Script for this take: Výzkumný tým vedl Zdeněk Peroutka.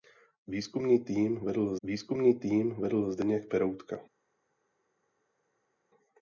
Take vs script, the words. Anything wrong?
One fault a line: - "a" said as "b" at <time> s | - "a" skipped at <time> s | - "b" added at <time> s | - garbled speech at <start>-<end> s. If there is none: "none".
- "výzkumný tým vedl" added at 1.8 s